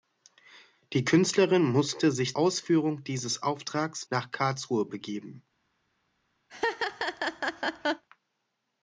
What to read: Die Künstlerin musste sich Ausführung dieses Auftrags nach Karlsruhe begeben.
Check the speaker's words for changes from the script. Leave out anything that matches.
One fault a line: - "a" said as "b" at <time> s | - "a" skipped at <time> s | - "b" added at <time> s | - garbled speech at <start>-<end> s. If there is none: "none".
none